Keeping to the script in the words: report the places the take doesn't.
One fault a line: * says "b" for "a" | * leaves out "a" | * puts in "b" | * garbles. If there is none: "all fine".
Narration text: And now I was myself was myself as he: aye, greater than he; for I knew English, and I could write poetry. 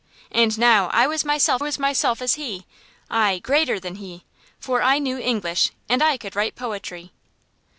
all fine